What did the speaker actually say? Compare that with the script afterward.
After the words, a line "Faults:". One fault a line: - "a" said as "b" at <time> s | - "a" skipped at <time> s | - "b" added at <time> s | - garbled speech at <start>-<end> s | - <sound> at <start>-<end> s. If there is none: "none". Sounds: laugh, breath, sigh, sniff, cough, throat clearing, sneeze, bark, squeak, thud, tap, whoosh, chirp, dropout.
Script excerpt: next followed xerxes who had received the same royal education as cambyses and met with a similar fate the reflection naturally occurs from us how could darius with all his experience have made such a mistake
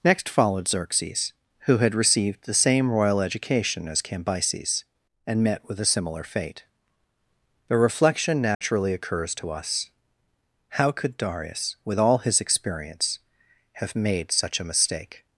next followed xerxes who had received the same royal education as cambyses and met with a similar fate the reflection naturally occurs to us how could darius with all his experience have made such a mistake
Faults:
- dropout at 8.5-8.6 s
- "from" said as "to" at 9.3 s